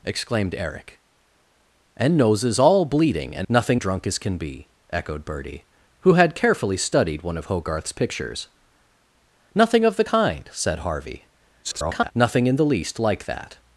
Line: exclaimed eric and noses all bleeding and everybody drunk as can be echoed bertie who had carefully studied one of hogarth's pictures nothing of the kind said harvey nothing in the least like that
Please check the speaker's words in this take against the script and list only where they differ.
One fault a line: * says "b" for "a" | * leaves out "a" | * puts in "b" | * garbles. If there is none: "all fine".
* says "nothing" for "everybody"
* garbles